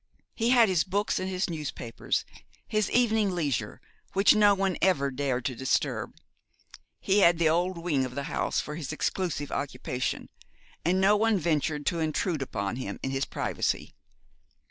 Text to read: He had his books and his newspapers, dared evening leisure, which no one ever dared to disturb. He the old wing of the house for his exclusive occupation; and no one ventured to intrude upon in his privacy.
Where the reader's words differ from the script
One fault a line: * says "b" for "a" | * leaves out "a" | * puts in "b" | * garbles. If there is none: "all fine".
* says "his" for "dared"
* puts in "had"
* puts in "him"